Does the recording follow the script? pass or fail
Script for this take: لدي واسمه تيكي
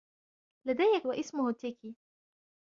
pass